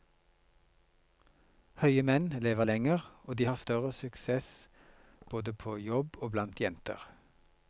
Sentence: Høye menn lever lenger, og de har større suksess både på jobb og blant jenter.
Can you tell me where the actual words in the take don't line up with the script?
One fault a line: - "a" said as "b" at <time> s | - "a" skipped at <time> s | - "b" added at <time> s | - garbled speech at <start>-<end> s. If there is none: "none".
none